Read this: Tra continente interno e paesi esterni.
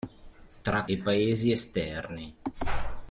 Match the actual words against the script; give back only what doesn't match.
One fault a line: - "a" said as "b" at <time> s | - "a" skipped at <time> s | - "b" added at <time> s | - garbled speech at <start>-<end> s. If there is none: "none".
- "continente interno" skipped at 0.8 s